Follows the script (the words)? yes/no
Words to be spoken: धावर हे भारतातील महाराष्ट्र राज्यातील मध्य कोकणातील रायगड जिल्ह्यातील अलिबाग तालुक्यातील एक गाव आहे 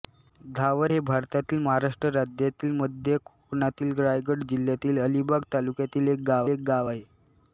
no